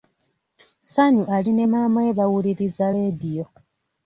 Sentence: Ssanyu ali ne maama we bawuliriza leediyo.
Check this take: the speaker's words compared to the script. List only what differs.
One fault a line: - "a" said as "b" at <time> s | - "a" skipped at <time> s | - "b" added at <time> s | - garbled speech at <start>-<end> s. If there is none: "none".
none